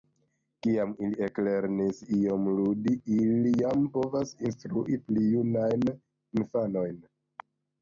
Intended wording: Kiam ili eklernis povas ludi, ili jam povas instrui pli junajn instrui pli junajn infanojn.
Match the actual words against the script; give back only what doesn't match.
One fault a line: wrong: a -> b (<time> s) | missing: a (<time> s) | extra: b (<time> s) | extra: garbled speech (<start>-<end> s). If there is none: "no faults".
wrong: povas -> iom (2.2 s)
missing: instrui pli junajn (5.9 s)